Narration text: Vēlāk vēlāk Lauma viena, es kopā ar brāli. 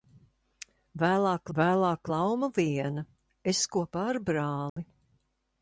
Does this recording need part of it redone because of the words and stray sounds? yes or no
yes